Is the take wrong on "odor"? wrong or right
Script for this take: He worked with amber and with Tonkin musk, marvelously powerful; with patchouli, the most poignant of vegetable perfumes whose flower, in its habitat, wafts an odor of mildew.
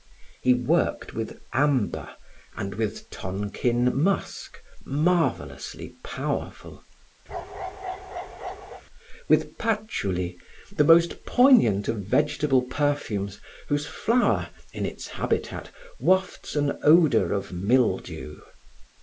right